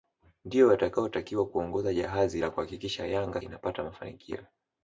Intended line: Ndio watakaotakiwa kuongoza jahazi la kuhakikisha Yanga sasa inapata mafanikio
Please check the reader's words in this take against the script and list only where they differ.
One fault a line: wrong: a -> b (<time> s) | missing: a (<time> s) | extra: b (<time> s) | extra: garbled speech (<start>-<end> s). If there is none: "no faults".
missing: sasa (3.4 s)